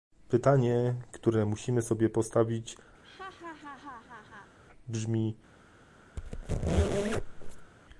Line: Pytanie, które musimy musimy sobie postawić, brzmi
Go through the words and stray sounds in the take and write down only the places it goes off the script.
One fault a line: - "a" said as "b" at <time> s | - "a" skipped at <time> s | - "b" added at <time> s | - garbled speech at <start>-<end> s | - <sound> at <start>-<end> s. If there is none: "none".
- "musimy" skipped at 1.8 s
- laugh at 3.0-4.6 s
- squeak at 6.2-7.7 s